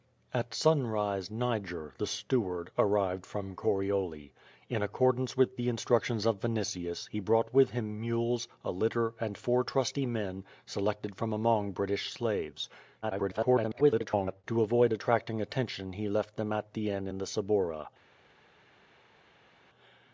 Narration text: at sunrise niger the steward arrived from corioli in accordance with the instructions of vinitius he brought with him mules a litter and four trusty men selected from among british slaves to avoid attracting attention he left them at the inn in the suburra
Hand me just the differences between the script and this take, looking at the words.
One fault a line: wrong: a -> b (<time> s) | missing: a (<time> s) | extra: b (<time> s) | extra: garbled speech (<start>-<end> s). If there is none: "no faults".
extra: garbled speech (13.0-14.4 s)